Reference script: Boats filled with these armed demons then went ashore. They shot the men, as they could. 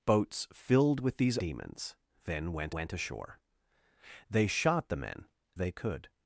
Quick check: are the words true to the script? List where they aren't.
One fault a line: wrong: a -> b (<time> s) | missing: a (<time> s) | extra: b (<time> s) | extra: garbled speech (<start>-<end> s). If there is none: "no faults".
missing: armed (1.4 s)
extra: went (2.7 s)
missing: as (5.3 s)